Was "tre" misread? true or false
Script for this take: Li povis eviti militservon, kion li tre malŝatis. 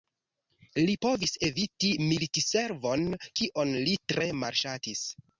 false